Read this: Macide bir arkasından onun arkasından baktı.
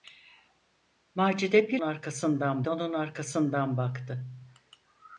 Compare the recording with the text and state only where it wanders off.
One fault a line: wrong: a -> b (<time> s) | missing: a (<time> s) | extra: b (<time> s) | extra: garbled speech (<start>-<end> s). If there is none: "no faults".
no faults